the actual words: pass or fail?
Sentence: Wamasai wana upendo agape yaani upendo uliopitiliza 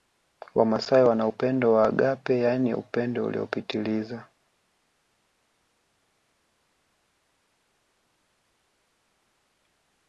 fail